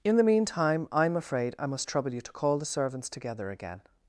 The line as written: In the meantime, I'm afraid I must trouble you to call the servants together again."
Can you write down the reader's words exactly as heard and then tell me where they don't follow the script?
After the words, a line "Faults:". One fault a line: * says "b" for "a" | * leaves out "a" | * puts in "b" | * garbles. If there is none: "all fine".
In the meantime, I'm afraid I must trouble you to call the servants together again."
Faults:
all fine